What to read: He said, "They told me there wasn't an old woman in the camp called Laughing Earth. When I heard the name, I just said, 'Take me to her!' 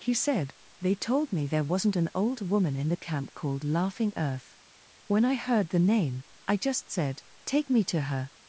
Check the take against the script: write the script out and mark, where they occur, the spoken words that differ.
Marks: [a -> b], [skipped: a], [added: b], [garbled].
He said, "They told me there wasn't an old woman in the camp called Laughing Earth. When I heard the name, I just said, 'Take me to her!'